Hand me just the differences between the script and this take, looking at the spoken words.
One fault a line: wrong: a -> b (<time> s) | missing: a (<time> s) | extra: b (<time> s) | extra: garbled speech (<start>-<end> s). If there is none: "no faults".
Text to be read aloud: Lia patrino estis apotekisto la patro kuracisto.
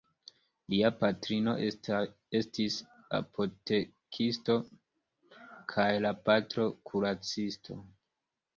extra: kaj (5.8 s)